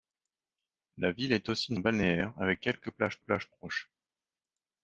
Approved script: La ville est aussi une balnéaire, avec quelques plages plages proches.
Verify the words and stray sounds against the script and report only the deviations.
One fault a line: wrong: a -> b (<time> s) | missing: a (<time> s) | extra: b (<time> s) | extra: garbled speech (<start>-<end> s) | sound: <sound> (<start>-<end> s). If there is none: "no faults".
no faults